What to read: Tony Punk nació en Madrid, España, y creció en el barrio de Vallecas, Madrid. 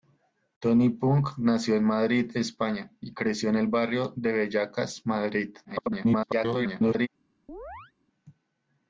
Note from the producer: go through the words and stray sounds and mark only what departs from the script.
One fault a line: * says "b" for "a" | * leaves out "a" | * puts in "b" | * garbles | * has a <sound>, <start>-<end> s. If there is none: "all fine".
* garbles
* has a chirp, 7.5-7.9 s